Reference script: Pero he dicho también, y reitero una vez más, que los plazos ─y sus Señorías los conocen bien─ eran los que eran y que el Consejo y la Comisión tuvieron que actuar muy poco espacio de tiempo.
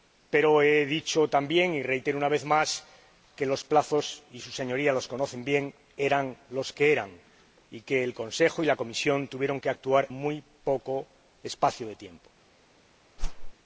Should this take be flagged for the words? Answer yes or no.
no